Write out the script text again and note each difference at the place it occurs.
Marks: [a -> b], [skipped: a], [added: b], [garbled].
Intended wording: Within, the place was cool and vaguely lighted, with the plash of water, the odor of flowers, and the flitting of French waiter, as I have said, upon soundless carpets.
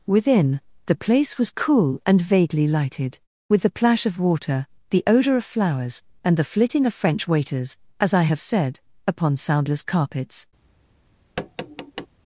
Within, the place was cool and vaguely lighted, with the plash of water, the odor of flowers, and the flitting of French [waiter, -> waiters] as I have said, upon soundless carpets.